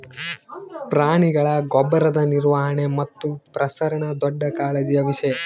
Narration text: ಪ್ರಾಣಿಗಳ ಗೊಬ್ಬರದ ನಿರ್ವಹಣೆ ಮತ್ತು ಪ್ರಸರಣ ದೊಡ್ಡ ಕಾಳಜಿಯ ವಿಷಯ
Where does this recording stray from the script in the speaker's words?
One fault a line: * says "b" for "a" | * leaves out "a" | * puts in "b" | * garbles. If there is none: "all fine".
all fine